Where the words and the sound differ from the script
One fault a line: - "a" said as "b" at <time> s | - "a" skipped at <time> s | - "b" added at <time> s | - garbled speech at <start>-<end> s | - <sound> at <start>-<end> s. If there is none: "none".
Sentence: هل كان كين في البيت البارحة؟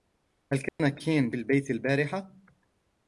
- dropout at 0.7-0.8 s
- "في" skipped at 1.3 s